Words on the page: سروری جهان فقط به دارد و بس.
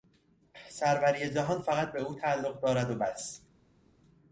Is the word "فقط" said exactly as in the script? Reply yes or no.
yes